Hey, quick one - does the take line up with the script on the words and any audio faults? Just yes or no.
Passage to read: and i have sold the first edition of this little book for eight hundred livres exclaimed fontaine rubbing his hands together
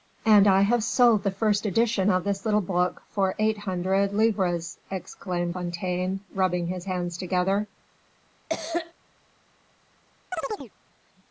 no